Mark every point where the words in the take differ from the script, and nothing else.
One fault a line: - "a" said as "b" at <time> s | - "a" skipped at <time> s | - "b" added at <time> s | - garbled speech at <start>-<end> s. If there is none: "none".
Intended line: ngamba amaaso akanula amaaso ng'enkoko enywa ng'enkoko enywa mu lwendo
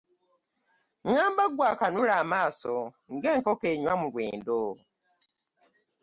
- "amaaso" said as "ggwe" at 1.5 s
- "ng'enkoko enywa" skipped at 3.9 s